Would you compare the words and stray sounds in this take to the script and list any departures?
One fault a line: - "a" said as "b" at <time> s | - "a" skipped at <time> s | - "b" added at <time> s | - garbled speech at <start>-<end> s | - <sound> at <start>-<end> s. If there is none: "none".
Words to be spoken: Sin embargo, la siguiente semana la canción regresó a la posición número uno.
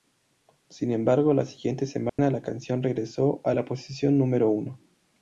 - dropout at 2.1-2.2 s